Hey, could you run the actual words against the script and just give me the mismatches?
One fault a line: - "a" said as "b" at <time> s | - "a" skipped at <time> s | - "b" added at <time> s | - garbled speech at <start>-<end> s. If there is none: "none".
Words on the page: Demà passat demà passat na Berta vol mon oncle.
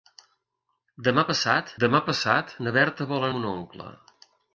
none